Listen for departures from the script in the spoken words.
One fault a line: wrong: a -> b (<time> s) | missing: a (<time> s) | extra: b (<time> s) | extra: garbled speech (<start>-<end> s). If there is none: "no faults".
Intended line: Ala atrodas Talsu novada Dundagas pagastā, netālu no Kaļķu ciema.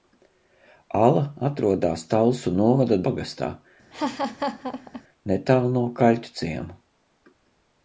missing: Dundagas (3.0 s)